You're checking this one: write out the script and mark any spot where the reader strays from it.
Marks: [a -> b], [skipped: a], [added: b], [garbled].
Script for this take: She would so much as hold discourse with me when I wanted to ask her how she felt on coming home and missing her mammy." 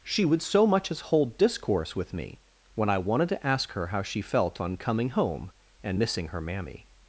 She would so much as hold discourse with me when I wanted to ask her how she felt on coming home and missing her mammy."